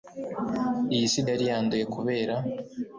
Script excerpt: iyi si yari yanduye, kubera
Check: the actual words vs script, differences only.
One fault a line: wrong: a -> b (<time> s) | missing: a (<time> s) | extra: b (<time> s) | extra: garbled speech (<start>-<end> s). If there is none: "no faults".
no faults